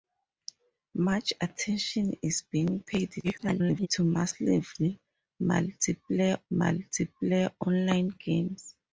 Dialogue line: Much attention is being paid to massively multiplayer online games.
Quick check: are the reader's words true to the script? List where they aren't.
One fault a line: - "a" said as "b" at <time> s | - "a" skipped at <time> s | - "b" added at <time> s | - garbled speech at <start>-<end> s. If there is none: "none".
- garbled speech at 3.2-3.9 s
- "multiplayer" added at 6.5 s